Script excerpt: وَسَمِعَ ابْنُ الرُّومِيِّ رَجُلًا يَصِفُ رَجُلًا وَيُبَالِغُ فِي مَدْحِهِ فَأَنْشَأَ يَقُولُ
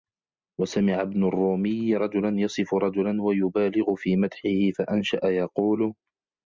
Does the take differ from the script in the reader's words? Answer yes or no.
no